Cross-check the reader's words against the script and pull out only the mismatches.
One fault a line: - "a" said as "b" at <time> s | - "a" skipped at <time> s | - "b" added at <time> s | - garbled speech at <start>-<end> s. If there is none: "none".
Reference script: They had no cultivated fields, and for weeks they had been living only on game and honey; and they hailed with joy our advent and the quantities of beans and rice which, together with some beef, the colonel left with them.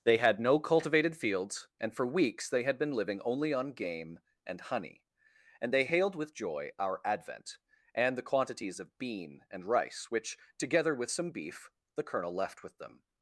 - "beans" said as "bean" at 9.0 s